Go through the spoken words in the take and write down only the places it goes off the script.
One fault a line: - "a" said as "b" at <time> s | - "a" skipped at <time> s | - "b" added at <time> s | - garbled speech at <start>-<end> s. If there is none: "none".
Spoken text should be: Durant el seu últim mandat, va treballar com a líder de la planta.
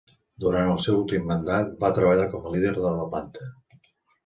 none